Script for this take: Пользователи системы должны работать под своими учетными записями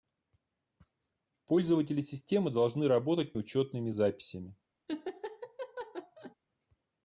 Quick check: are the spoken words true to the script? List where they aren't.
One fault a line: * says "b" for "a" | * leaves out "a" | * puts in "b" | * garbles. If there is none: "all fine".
* leaves out "под своими"